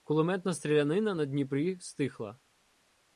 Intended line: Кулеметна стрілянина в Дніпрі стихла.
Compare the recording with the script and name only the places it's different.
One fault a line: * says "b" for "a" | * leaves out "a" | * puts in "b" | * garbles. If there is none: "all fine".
* says "на" for "в"